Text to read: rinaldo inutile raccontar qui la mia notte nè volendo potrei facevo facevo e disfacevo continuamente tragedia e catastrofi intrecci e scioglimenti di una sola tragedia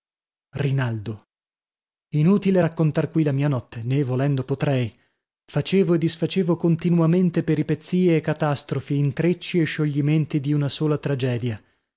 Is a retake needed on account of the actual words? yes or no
yes